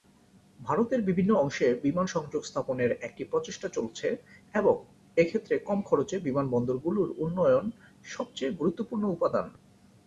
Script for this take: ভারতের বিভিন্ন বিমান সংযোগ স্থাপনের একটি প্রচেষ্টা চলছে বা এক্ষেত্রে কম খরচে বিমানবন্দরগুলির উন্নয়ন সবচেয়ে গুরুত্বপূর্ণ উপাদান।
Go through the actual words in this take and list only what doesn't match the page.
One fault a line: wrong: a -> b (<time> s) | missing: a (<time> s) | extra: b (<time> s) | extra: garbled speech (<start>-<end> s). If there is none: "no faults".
extra: অংশে (1.4 s)
wrong: বা -> এবং (4.5 s)